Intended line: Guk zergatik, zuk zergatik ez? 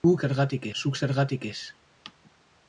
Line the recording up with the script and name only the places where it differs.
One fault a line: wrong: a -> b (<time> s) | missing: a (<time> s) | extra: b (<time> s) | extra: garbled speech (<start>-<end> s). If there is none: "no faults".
no faults